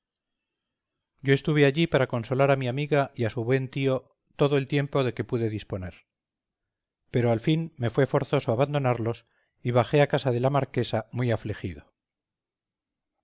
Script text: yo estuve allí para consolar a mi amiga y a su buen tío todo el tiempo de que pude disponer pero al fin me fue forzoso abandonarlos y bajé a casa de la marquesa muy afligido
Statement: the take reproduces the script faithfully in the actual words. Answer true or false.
true